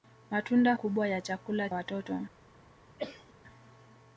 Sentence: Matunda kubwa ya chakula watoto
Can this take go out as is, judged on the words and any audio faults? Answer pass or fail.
fail